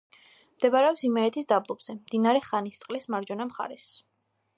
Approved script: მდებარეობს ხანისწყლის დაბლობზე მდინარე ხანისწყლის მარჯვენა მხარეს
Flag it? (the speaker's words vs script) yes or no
yes